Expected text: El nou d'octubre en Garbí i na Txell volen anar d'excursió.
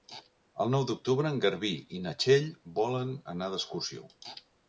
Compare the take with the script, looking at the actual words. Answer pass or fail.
pass